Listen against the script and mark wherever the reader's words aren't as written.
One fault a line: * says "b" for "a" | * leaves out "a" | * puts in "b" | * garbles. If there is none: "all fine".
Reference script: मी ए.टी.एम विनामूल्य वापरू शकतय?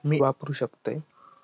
* leaves out "ए.टी.एम विनामूल्य"